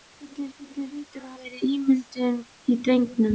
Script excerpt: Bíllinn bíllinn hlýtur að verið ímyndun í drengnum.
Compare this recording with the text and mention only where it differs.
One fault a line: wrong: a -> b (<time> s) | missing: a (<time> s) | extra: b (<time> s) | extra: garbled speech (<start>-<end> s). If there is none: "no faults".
no faults